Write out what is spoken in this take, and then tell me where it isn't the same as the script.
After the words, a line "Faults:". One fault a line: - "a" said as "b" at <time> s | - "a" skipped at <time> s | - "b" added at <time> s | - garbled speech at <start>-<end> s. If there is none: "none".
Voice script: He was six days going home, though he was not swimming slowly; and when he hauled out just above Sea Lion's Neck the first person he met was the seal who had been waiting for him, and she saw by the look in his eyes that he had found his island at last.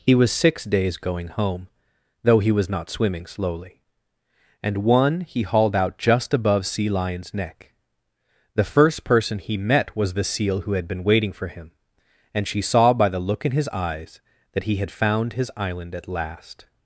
He was six days going home, though he was not swimming slowly; and one he hauled out just above Sea Lion's Neck the first person he met was the seal who had been waiting for him, and she saw by the look in his eyes that he had found his island at last.
Faults:
- "when" said as "one" at 4.8 s